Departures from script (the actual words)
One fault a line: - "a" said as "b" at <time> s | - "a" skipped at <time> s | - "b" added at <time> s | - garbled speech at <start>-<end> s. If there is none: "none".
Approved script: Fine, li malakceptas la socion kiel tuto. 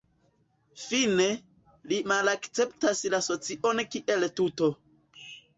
none